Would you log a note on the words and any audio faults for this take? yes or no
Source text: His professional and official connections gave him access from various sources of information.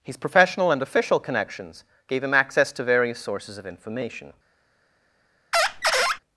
yes